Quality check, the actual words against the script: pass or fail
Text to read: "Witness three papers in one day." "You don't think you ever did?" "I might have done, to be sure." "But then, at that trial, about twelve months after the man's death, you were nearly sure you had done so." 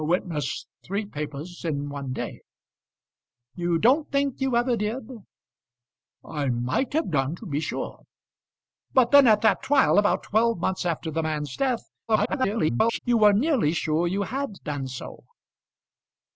fail